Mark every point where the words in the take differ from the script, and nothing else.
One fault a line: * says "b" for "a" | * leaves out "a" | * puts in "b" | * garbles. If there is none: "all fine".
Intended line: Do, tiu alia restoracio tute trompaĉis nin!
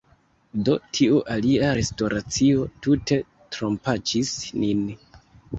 all fine